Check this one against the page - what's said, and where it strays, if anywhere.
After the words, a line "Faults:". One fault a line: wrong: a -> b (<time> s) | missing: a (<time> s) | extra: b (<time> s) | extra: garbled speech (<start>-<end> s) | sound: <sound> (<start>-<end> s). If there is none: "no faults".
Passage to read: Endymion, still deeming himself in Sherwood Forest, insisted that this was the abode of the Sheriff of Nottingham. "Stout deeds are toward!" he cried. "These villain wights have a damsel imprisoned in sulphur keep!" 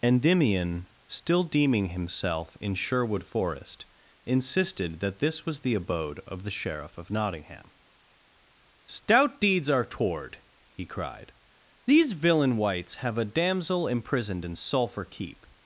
Endymion, still deeming himself in Sherwood Forest, insisted that this was the abode of the Sheriff of Nottingham. "Stout deeds are toward!" he cried. "These villain wights have a damsel imprisoned in sulphur keep!"
Faults:
no faults